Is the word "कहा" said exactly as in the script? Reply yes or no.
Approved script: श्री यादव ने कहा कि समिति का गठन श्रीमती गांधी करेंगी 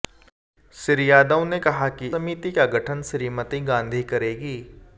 yes